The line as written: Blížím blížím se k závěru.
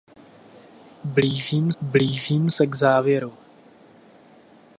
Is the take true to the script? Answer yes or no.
yes